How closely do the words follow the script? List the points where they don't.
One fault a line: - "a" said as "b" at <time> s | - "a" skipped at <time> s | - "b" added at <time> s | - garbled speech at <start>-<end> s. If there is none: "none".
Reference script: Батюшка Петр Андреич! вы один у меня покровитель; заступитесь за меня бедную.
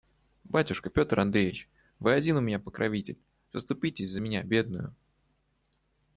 none